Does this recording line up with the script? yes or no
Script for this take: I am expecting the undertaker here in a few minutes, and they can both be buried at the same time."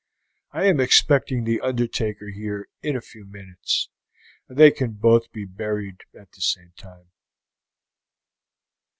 yes